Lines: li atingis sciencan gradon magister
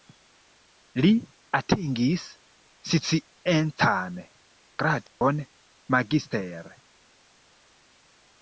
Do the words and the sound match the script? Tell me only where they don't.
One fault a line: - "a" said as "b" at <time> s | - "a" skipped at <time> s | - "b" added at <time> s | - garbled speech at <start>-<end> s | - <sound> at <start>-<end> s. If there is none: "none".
- dropout at 5.1-5.2 s